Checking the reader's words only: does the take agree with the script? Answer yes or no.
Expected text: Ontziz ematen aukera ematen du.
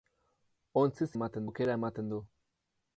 yes